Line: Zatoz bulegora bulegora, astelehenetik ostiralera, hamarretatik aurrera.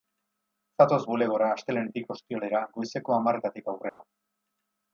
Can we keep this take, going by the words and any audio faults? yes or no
no